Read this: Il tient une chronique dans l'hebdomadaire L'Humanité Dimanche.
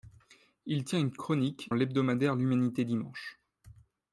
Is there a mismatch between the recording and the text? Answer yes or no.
yes